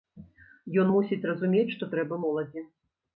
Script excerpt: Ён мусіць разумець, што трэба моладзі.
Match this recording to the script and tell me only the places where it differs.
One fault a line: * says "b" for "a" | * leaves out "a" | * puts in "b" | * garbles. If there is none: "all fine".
all fine